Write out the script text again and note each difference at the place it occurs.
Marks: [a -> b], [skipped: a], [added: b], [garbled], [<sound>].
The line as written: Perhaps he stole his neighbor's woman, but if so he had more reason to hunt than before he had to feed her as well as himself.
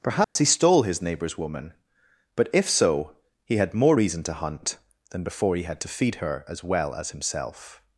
Perhaps [dropout] he stole his neighbor's woman, but if so he had more reason to hunt than before he had to feed her as well as himself.